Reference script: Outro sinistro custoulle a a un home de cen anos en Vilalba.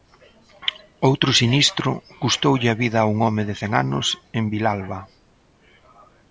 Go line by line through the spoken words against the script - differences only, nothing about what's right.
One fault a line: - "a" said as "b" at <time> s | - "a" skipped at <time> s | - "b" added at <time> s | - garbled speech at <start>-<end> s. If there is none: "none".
- "vida" added at 2.8 s